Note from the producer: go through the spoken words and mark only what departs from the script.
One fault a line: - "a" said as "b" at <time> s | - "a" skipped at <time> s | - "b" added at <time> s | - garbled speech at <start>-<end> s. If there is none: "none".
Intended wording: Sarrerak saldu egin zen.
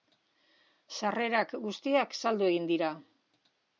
- "guztiak" added at 1.6 s
- "zen" said as "dira" at 2.7 s